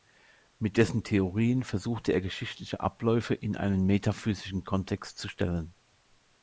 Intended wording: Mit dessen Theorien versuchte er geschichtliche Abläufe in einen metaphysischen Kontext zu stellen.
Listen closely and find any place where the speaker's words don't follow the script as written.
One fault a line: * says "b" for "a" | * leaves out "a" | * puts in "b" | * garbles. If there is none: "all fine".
all fine